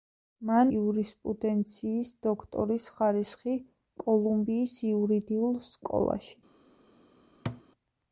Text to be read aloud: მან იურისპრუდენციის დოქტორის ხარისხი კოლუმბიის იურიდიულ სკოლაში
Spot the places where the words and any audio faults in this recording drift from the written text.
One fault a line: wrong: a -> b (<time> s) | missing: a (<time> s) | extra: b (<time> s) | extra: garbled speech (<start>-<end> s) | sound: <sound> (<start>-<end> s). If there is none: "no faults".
sound: thud (7.5-7.6 s)